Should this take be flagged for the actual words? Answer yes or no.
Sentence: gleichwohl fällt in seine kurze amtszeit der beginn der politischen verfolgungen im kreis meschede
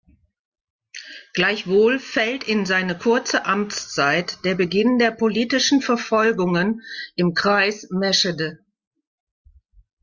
no